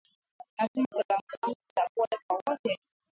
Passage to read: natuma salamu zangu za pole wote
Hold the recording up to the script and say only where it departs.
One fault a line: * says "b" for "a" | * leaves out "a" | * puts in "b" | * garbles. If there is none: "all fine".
* puts in "kwa"